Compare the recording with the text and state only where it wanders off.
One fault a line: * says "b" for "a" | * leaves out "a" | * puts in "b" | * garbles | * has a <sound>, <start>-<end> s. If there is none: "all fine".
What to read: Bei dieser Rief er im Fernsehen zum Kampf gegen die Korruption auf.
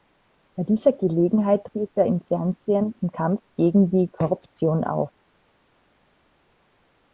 * puts in "Gelegenheit"